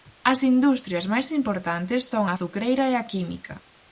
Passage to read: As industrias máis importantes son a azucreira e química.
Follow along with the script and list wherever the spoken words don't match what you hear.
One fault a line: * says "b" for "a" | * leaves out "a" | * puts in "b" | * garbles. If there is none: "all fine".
* puts in "a"